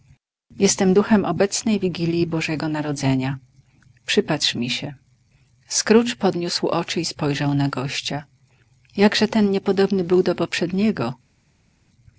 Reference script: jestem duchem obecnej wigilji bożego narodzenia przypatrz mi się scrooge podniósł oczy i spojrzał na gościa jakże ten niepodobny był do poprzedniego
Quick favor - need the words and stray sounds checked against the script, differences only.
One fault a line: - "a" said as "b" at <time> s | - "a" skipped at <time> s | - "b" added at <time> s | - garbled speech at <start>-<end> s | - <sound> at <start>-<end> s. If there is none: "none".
none